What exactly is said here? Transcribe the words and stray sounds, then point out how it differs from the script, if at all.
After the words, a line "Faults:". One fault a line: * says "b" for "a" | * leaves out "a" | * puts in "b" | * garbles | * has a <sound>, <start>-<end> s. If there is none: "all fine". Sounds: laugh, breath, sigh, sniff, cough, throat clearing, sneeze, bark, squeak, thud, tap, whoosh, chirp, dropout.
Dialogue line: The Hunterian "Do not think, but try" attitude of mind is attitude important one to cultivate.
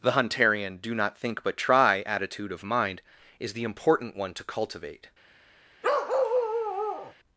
The Hunterian "Do not think, but try" attitude of mind is the important one to cultivate.
Faults:
* says "the" for "attitude"
* has a bark, 5.8-7.1 s